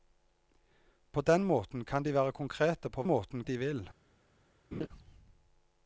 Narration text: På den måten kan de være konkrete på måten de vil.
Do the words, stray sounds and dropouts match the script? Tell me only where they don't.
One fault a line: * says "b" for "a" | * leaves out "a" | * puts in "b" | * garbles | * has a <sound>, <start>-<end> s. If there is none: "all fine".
* has a laugh, 4.7-4.9 s